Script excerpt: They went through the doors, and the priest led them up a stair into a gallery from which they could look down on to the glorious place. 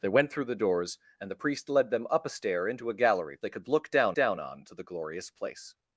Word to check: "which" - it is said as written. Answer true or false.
false